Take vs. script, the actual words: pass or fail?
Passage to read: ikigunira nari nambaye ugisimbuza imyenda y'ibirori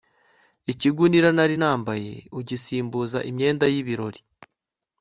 pass